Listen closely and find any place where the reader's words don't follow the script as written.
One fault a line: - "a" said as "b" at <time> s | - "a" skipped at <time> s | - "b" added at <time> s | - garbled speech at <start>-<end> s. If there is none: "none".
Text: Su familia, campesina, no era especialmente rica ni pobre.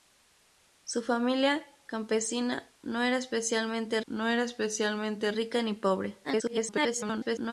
- "no era especialmente" added at 4.1 s
- garbled speech at 6.2-7.5 s